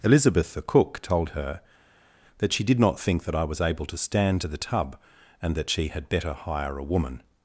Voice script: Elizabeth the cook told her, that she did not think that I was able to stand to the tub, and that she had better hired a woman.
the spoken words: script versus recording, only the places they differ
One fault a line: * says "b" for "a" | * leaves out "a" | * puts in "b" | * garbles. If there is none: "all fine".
* says "hire" for "hired"